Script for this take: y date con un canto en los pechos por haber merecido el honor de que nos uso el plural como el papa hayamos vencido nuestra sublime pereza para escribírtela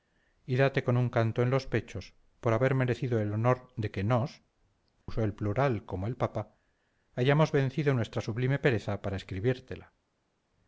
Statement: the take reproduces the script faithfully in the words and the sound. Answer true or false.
false